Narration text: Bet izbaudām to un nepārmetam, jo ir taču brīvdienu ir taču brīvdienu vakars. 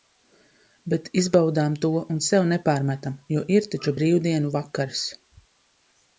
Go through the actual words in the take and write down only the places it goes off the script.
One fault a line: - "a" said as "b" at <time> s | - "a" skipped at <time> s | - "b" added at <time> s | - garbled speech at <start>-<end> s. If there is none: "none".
- "sev" added at 2.3 s
- "ir taču brīvdienu" skipped at 4.5 s